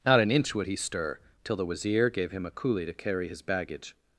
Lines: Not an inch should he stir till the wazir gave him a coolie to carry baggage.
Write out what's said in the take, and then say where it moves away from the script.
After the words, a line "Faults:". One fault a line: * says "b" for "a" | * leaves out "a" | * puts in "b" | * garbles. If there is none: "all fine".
Not an inch would he stir till the wazir gave him a coolie to carry his baggage.
Faults:
* says "would" for "should"
* puts in "his"